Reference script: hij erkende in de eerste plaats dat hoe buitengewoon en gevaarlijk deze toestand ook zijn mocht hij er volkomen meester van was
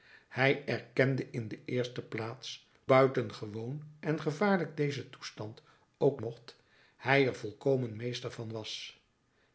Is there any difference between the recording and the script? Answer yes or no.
yes